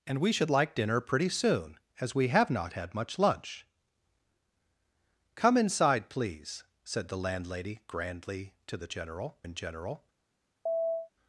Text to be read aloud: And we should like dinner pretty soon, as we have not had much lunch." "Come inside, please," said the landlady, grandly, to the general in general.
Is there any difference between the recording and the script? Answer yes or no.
no